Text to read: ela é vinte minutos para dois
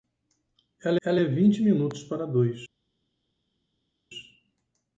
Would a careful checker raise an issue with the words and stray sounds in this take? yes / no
yes